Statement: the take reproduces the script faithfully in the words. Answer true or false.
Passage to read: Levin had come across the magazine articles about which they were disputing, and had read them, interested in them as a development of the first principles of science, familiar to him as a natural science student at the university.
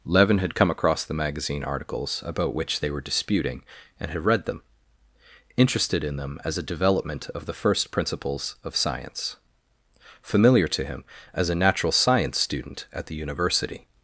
true